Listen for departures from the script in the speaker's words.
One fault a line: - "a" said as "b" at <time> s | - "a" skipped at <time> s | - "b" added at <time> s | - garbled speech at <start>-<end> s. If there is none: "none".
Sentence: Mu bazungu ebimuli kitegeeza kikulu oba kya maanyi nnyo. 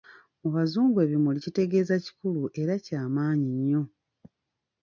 - "oba" said as "era" at 2.6 s